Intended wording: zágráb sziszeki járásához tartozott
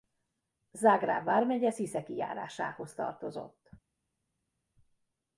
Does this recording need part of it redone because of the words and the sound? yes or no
yes